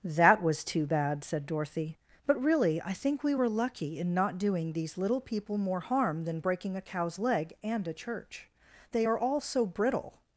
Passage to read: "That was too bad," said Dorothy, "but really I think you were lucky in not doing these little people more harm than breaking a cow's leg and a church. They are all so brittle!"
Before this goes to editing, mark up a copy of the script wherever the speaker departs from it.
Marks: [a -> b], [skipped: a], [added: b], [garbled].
"That was too bad," said Dorothy, "but really I think [you -> we] were lucky in not doing these little people more harm than breaking a cow's leg and a church. They are all so brittle!"